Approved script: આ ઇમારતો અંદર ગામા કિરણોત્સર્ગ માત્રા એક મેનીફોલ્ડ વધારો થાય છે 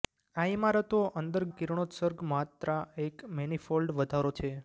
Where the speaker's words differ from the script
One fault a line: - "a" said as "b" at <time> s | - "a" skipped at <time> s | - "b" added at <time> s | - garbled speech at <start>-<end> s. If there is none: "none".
- "ગામા" skipped at 1.4 s
- "થાય" skipped at 4.3 s